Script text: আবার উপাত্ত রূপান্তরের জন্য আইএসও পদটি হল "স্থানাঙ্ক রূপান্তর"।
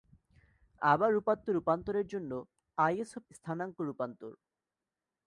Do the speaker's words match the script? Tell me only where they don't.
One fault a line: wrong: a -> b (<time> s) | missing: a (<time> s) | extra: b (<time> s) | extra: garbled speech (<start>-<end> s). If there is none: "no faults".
missing: পদটি হল (3.2 s)